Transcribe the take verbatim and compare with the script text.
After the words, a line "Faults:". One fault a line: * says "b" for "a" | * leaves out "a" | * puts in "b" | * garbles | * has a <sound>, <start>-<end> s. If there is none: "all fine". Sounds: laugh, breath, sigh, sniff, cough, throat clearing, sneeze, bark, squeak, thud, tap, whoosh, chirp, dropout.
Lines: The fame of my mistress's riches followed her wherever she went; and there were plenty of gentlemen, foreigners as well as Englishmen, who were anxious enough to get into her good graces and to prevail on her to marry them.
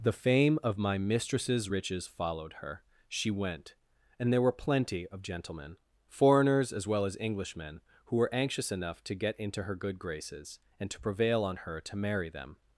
The fame of my mistress's riches followed her she went; and there were plenty of gentlemen, foreigners as well as Englishmen, who were anxious enough to get into her good graces and to prevail on her to marry them.
Faults:
* leaves out "wherever"